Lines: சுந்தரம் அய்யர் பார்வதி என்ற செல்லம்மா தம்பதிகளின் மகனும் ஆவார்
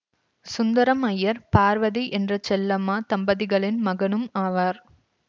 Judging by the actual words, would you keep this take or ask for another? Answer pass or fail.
pass